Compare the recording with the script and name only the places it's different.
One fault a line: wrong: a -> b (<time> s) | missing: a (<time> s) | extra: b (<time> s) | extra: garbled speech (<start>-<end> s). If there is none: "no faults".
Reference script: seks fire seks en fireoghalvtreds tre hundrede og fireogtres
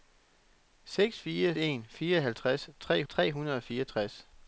missing: seks (1.6 s)
extra: tre (3.1 s)